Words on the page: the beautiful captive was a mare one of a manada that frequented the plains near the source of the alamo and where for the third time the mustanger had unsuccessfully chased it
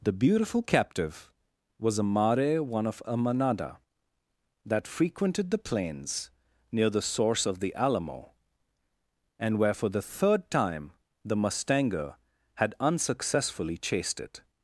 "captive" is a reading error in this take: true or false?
false